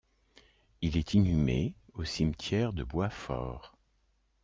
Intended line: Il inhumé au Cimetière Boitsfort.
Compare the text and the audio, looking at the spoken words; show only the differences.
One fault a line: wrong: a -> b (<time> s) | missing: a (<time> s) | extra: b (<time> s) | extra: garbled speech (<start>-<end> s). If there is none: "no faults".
extra: est (1.0 s)
extra: de (2.7 s)